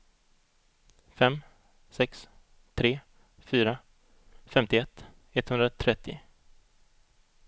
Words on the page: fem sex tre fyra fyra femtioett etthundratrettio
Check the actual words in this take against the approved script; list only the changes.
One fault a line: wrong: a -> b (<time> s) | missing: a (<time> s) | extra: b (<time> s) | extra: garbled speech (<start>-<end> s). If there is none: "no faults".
missing: fyra (3.8 s)